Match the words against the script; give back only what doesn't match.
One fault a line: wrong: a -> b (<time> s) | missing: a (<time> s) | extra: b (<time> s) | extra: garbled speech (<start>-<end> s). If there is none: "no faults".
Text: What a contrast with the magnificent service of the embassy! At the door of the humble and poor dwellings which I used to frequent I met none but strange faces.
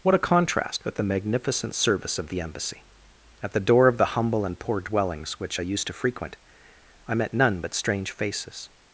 no faults